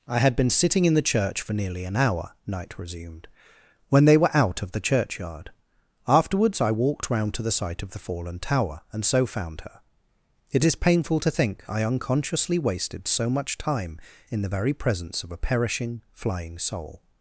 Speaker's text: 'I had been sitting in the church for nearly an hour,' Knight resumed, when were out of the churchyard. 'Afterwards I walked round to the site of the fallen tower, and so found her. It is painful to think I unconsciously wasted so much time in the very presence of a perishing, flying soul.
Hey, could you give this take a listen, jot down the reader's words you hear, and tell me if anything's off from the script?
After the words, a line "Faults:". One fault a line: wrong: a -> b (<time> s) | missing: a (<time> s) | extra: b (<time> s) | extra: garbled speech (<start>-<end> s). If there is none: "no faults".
'I had been sitting in the church for nearly an hour,' Knight resumed, when they were out of the churchyard. 'Afterwards I walked round to the site of the fallen tower, and so found her. It is painful to think I unconsciously wasted so much time in the very presence of a perishing, flying soul.
Faults:
extra: they (4.0 s)